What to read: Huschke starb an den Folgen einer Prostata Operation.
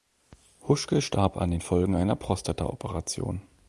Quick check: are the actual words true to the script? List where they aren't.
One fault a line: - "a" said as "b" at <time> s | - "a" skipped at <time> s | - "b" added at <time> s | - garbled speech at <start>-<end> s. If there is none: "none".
none